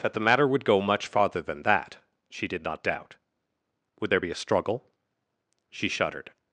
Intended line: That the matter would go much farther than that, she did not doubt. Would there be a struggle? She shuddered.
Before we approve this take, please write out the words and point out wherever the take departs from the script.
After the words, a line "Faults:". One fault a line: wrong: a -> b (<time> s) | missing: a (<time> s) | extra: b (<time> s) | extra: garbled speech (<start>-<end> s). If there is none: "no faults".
That the matter would go much farther than that, she did not doubt. Would there be a struggle? She shuddered.
Faults:
no faults